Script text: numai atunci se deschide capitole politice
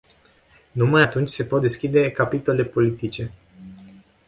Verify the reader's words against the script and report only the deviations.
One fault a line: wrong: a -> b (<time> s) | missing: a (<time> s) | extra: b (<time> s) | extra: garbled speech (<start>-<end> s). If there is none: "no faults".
extra: pot (1.4 s)